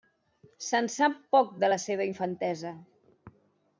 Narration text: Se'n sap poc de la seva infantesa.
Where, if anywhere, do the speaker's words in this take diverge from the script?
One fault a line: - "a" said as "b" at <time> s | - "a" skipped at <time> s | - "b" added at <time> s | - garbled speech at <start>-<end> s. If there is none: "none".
none